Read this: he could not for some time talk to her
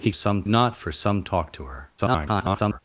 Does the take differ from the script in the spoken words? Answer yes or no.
yes